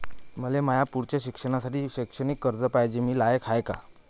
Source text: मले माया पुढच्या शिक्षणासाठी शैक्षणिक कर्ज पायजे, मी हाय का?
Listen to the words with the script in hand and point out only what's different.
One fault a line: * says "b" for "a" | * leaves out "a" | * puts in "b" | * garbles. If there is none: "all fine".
* puts in "लायक"